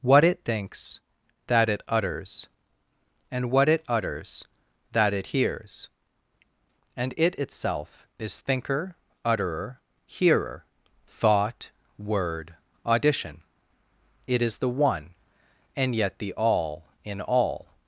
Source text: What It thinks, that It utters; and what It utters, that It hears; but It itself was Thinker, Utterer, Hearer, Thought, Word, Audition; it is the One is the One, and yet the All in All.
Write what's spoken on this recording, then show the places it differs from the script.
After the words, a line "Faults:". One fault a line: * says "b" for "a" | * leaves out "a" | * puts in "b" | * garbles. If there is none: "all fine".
What It thinks, that It utters; and what It utters, that It hears; and It itself is Thinker, Utterer, Hearer, Thought, Word, Audition; it is the One, and yet the All in All.
Faults:
* says "and" for "but"
* says "is" for "was"
* leaves out "is the One"